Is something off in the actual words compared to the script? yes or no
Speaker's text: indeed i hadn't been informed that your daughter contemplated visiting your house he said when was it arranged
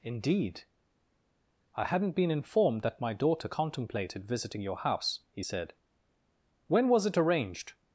yes